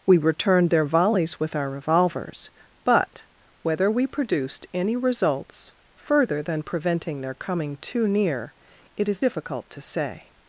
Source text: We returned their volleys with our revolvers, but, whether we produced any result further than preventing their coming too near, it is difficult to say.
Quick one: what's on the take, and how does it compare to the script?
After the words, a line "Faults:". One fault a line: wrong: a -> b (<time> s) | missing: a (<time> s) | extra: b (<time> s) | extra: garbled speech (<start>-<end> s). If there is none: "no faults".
We returned their volleys with our revolvers, but, whether we produced any results further than preventing their coming too near, it is difficult to say.
Faults:
wrong: result -> results (5.0 s)